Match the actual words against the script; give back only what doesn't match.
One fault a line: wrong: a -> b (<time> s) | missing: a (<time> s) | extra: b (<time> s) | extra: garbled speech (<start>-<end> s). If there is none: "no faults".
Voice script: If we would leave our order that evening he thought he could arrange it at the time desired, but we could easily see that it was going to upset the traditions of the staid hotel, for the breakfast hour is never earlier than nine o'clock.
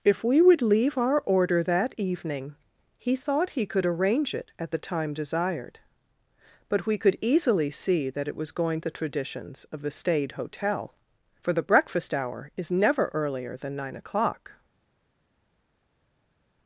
missing: to upset (8.8 s)